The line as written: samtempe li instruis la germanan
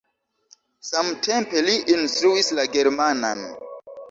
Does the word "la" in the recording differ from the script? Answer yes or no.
no